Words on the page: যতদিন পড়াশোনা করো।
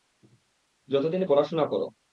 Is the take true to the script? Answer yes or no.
yes